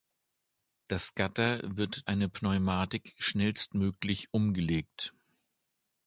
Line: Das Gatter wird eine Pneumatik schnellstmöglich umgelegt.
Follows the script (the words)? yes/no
yes